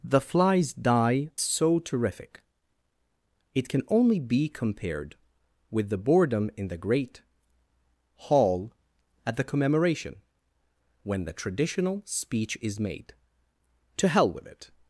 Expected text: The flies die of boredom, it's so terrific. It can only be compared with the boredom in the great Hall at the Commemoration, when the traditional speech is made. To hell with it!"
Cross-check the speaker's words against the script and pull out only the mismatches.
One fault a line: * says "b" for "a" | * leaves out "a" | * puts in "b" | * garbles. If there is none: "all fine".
* leaves out "of boredom it's"